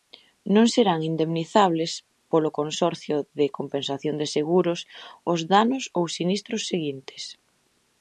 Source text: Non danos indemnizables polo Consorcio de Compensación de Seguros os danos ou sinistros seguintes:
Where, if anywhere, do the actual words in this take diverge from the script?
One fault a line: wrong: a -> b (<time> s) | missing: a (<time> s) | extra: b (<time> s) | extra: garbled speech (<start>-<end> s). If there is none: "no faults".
wrong: danos -> serán (0.7 s)